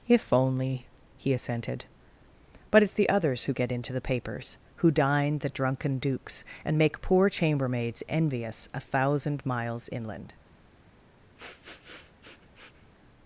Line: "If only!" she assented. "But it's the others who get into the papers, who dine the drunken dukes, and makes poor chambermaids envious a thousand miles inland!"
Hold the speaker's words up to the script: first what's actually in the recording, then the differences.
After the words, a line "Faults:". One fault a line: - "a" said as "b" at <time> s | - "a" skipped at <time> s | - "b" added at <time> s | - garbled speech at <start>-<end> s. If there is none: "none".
"If only!" he assented. "But it's the others who get into the papers, who dine the drunken dukes, and make poor chambermaids envious a thousand miles inland!"
Faults:
- "she" said as "he" at 1.1 s
- "makes" said as "make" at 6.8 s